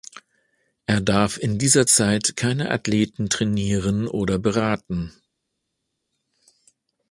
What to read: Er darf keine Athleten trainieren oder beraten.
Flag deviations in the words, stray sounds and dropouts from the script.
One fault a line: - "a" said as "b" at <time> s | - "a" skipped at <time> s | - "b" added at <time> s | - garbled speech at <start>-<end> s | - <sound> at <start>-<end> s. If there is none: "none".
- "in dieser Zeit" added at 1.4 s